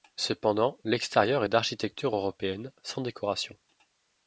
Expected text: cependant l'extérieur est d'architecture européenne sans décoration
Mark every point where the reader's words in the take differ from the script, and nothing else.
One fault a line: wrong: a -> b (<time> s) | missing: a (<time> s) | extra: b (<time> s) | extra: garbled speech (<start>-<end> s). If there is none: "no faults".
no faults